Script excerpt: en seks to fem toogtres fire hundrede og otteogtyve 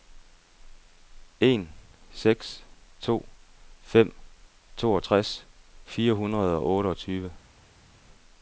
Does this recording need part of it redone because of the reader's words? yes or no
no